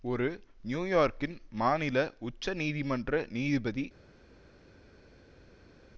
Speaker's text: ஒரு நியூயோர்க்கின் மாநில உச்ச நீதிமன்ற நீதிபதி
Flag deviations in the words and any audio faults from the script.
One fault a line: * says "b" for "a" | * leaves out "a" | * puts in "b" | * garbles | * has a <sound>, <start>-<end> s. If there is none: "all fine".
all fine